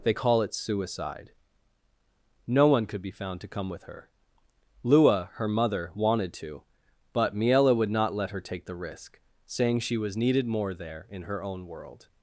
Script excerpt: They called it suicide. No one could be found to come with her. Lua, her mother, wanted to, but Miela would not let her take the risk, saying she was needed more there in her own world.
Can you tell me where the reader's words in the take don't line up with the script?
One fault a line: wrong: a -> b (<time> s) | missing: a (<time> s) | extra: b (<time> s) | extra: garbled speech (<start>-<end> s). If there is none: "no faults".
wrong: called -> call (0.1 s)